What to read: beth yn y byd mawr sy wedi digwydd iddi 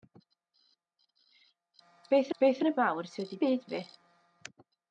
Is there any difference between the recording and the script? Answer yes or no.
yes